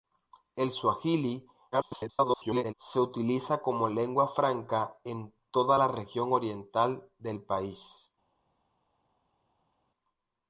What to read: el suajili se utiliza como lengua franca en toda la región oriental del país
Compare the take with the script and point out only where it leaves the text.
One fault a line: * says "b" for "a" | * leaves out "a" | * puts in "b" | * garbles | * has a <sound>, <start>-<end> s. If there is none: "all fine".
* garbles